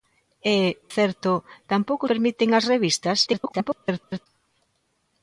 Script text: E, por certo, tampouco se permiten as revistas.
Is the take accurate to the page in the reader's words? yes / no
no